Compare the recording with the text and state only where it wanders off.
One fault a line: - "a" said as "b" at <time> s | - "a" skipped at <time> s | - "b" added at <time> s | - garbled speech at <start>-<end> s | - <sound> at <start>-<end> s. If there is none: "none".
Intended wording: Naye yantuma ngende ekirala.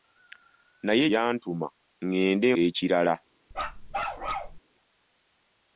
- bark at 3.5-4.6 s